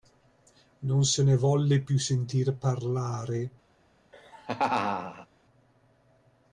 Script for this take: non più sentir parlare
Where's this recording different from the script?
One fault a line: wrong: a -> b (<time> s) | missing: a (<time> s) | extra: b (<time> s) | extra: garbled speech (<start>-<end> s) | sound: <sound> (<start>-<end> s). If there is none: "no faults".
extra: se ne volle (1.1 s)
sound: laugh (4.1-5.3 s)